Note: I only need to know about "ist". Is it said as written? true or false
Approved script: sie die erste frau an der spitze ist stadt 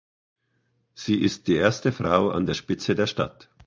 false